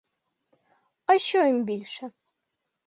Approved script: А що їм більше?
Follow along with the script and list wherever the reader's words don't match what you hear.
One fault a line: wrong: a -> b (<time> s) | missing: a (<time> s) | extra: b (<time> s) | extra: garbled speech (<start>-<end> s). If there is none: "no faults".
no faults